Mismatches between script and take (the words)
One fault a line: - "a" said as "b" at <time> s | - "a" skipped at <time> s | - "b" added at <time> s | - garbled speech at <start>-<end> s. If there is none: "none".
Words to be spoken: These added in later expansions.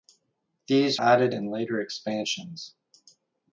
none